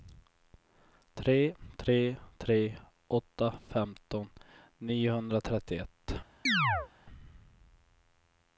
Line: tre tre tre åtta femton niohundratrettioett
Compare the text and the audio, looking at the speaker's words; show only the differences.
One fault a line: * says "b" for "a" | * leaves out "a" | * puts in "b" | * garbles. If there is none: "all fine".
all fine